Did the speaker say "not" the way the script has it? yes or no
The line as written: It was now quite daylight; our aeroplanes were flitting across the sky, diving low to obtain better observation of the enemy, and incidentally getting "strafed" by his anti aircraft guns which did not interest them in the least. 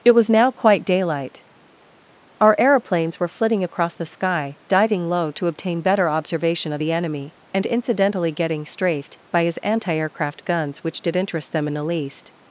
no